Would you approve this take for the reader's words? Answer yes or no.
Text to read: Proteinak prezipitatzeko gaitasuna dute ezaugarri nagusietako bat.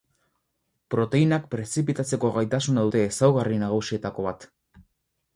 yes